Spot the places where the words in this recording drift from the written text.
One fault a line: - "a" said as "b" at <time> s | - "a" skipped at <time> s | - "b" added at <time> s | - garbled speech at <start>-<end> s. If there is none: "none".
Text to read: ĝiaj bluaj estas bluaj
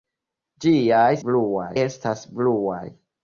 none